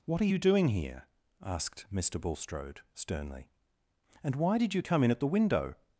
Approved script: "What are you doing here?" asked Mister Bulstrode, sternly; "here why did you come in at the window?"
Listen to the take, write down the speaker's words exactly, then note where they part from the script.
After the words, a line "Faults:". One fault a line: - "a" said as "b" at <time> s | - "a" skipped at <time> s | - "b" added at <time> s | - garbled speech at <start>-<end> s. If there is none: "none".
"What are you doing here?" asked Mister Bulstrode, sternly; "and why did you come in at the window?"
Faults:
- "here" said as "and" at 4.2 s